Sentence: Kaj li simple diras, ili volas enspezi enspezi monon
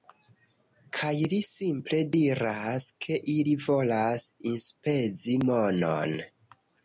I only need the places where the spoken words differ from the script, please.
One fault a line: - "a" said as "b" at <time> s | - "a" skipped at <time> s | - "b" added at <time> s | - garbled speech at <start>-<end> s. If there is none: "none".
- "ke" added at 3.0 s
- "enspezi" skipped at 5.4 s